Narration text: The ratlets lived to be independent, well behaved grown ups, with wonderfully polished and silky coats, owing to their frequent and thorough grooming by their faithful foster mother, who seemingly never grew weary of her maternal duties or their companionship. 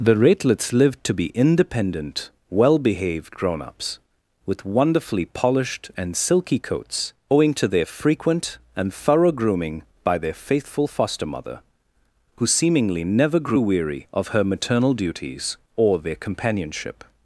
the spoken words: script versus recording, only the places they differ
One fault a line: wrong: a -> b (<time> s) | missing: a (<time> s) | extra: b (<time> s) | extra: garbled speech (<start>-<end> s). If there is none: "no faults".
no faults